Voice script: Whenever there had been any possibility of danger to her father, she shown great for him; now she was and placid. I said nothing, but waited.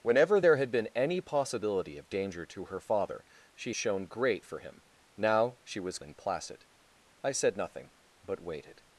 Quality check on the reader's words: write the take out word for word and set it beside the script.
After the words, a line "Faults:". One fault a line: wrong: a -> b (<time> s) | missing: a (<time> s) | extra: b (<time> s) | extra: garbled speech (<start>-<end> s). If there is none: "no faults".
Whenever there had been any possibility of danger to her father, she shown great for him; now she was and placid. I said nothing, but waited.
Faults:
no faults